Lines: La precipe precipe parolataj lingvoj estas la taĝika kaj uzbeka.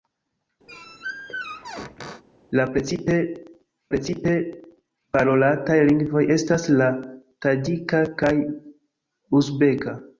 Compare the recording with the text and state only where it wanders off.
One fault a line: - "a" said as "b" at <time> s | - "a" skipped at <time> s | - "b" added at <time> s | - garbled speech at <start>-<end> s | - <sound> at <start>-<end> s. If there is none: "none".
- squeak at 0.7-2.2 s